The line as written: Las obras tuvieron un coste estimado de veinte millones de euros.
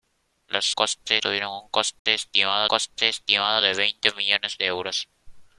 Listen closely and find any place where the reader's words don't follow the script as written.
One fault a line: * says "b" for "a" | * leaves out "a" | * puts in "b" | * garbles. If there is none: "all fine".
* says "coste" for "obras"
* puts in "coste estimado"